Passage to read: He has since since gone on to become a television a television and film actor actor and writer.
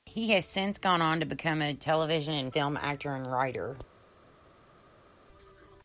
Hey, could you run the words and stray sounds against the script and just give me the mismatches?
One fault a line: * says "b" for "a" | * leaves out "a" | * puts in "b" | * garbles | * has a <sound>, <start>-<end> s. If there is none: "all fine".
* leaves out "since"
* leaves out "a television"
* leaves out "actor"